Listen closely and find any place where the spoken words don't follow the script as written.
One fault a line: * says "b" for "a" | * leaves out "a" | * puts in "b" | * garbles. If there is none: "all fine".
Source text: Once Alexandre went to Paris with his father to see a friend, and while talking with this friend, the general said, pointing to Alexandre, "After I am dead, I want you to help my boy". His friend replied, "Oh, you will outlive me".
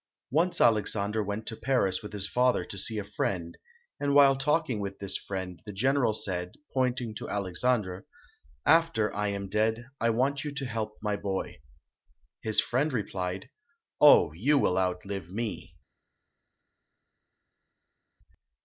all fine